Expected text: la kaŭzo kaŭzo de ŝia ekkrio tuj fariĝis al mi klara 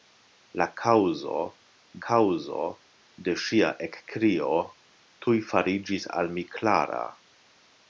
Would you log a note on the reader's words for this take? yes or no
no